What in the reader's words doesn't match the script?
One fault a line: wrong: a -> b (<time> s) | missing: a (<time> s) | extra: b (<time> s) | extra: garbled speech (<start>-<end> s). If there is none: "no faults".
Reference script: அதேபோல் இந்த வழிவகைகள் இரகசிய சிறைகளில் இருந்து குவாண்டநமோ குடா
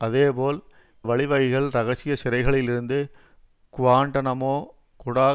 missing: இந்த (0.6 s)